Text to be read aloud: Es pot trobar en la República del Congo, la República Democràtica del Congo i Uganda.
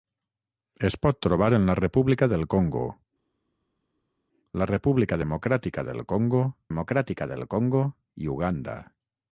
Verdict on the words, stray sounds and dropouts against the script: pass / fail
fail